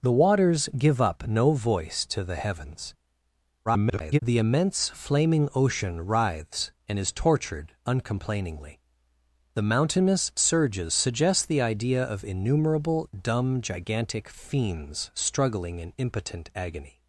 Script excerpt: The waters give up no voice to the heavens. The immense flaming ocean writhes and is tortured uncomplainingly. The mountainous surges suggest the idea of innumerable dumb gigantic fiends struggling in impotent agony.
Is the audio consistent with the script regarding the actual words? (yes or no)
no